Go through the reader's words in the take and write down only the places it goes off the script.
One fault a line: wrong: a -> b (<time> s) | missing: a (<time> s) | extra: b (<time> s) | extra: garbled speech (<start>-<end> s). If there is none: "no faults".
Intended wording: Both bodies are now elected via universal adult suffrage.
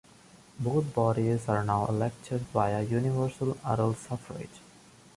no faults